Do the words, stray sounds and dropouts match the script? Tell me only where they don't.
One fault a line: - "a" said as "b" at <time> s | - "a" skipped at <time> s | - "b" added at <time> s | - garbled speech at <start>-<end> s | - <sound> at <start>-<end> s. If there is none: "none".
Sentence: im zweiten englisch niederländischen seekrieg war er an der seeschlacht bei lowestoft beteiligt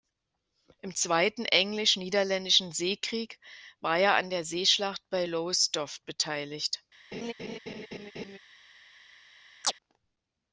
- laugh at 7.1-8.4 s
- chirp at 9.6-9.7 s